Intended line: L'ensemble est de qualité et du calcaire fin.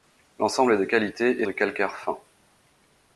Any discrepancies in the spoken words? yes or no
no